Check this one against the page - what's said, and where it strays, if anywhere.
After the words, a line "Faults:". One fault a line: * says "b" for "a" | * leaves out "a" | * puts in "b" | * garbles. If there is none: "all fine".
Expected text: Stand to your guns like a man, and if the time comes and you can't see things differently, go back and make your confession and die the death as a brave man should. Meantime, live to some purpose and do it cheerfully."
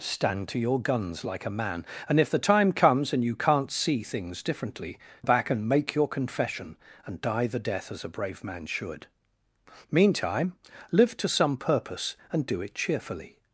Stand to your guns like a man, and if the time comes and you can't see things differently, back and make your confession and die the death as a brave man should. Meantime, live to some purpose and do it cheerfully."
Faults:
* leaves out "go"